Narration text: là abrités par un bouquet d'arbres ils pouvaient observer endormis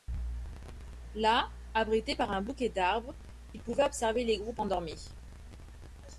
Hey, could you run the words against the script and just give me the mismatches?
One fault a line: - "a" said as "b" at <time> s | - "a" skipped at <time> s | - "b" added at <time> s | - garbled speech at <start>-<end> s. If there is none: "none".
- "les groupes" added at 4.2 s